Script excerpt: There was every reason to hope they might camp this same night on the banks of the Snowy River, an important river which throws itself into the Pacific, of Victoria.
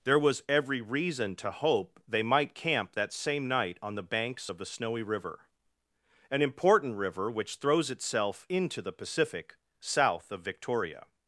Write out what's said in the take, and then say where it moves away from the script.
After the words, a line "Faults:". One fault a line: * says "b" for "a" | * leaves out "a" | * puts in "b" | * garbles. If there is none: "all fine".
There was every reason to hope they might camp that same night on the banks of the Snowy River, an important river which throws itself into the Pacific, south of Victoria.
Faults:
* says "that" for "this"
* puts in "south"